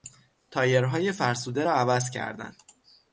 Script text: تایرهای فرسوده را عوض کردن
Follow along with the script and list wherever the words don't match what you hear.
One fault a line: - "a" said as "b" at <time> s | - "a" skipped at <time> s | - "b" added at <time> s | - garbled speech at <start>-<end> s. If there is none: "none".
none